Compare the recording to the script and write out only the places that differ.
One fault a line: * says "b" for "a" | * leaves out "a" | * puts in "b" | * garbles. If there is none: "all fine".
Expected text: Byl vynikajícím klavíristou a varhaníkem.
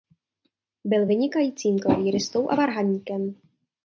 all fine